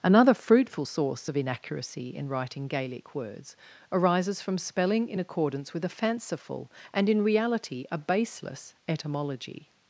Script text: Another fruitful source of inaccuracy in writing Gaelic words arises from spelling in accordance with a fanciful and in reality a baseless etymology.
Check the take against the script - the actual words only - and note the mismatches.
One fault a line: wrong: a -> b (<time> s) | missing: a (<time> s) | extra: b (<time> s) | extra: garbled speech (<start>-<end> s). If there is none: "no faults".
no faults